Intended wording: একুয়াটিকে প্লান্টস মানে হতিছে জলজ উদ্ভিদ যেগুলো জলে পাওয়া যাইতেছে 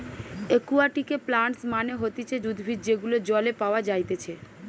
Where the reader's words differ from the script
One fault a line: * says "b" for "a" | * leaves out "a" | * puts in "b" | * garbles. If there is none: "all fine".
* leaves out "জলজ"